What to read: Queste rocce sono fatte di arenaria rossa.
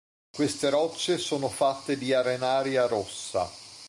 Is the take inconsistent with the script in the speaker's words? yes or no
no